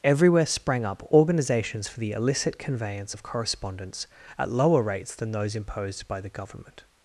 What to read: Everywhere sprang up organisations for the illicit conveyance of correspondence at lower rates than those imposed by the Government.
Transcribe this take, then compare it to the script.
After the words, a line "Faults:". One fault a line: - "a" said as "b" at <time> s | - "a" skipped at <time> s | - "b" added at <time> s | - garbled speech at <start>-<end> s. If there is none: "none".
Everywhere sprang up organisations for the illicit conveyance of correspondence at lower rates than those imposed by the Government.
Faults:
none